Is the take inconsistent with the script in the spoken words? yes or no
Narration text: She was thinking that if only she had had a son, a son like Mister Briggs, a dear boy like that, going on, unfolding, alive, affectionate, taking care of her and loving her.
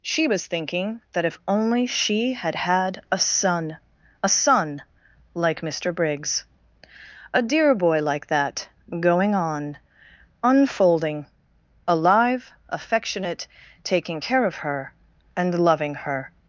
no